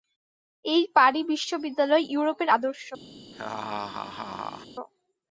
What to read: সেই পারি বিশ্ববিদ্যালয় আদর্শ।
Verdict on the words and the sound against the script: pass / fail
fail